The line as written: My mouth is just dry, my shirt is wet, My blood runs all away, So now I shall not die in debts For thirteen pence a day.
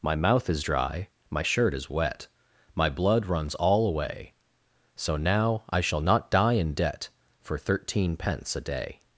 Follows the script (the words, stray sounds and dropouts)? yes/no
no